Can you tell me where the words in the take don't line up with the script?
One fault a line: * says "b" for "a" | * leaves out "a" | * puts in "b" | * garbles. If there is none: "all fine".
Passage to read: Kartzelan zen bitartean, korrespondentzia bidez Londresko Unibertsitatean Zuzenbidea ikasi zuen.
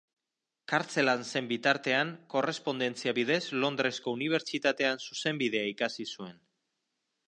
all fine